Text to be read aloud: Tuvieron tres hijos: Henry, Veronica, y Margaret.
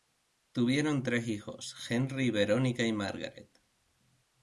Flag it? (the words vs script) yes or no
no